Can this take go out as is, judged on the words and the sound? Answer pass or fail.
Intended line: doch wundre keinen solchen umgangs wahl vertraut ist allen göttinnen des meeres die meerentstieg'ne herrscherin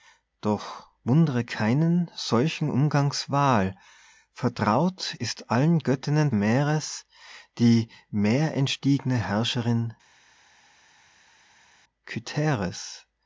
fail